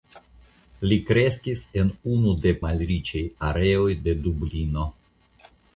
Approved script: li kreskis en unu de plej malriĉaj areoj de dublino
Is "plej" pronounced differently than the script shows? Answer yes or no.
yes